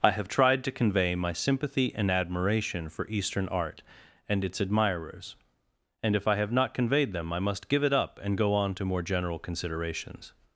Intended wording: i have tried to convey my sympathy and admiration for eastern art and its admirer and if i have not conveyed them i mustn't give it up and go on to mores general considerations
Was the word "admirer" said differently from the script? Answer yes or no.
yes